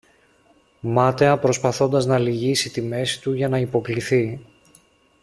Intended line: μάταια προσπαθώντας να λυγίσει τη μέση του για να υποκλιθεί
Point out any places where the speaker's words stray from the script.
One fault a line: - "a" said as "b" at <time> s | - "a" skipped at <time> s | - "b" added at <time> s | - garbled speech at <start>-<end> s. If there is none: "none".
none